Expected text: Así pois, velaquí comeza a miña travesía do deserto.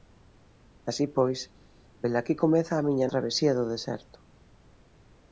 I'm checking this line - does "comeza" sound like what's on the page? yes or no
yes